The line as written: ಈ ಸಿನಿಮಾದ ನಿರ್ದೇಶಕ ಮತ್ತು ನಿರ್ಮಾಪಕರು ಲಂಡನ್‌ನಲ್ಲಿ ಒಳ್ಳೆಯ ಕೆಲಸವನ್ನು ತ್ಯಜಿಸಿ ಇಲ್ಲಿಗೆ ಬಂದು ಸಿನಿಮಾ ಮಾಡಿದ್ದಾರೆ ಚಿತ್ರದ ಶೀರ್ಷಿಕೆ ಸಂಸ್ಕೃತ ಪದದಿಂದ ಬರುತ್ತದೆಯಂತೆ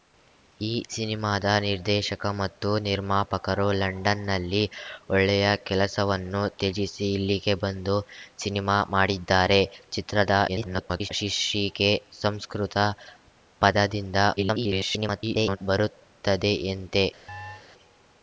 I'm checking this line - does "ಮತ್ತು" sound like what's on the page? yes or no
yes